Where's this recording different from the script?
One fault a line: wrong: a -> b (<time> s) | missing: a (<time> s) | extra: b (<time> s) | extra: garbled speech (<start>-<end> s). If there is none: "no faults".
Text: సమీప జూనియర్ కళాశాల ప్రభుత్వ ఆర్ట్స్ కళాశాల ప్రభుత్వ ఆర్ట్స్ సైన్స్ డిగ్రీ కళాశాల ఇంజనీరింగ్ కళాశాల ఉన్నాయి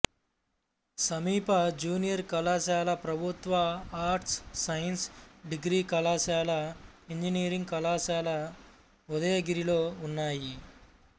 missing: కళాశాల ప్రభుత్వ ఆర్ట్స్ (4.3 s)
extra: ఉదయగిరిలో (9.1 s)